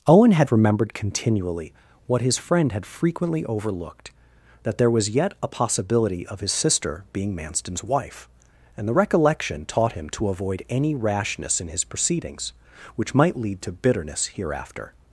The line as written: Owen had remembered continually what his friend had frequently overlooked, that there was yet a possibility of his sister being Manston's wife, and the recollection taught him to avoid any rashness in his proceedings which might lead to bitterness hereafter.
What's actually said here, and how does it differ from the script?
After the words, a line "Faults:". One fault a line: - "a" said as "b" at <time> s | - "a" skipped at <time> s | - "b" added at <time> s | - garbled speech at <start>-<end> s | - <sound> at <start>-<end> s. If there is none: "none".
Owen had remembered continually what his friend had frequently overlooked, that there was yet a possibility of his sister being Manston's wife, and the recollection taught him to avoid any rashness in his proceedings which might lead to bitterness hereafter.
Faults:
none